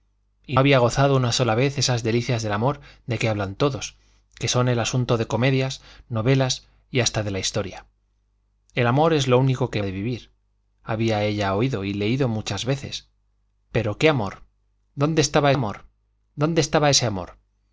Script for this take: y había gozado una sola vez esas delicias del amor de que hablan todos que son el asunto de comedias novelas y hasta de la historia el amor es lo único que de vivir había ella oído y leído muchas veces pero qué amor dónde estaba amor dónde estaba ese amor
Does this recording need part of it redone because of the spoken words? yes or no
no